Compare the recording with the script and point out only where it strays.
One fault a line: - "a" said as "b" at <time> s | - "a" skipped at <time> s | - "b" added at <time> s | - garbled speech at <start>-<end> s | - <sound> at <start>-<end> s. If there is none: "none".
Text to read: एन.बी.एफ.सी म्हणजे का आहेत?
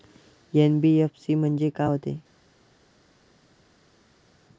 - "आहेत" said as "होते" at 1.8 s